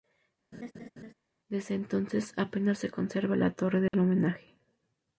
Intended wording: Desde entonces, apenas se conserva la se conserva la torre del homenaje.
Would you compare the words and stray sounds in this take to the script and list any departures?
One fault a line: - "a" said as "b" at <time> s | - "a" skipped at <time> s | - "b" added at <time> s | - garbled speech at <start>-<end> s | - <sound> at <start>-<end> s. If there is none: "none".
- laugh at 0.5-1.1 s
- "se conserva la" skipped at 3.5 s
- dropout at 3.9-3.9 s